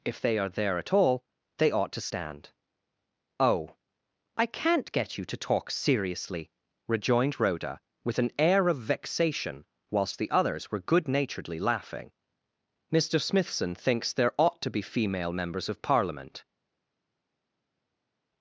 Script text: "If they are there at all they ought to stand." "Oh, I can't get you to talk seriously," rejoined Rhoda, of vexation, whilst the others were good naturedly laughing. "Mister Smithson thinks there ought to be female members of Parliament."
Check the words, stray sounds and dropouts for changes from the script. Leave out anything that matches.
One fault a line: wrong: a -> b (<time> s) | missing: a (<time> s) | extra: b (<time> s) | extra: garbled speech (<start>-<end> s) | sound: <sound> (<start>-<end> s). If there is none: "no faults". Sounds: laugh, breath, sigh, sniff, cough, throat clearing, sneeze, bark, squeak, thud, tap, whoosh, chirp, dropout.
extra: with an air (8.0 s)